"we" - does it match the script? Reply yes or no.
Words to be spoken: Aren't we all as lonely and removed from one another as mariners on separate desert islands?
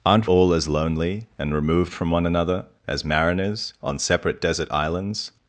no